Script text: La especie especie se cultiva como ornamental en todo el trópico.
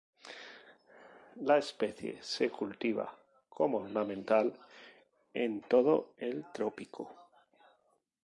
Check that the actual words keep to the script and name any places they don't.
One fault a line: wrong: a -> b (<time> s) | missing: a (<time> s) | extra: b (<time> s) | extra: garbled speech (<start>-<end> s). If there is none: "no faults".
missing: especie (2.2 s)